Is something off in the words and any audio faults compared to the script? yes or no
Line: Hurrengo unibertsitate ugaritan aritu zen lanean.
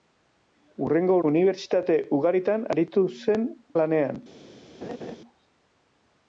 yes